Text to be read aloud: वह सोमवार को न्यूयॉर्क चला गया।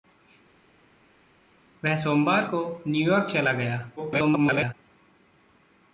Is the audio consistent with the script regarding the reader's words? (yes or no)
no